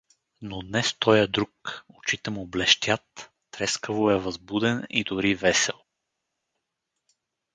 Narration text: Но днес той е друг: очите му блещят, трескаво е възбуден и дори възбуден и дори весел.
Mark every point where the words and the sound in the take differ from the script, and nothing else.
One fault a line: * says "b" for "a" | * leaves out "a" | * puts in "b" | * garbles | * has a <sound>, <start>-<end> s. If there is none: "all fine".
* leaves out "възбуден и дори"